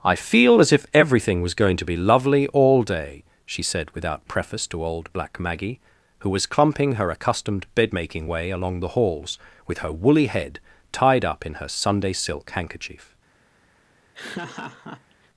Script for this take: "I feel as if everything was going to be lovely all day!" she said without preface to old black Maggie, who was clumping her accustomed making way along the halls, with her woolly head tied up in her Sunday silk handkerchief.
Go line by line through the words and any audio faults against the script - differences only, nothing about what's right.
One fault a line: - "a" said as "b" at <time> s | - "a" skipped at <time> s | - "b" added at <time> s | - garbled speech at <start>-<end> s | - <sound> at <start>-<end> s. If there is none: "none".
- "bed" added at 7.7 s
- laugh at 14.1-15.3 s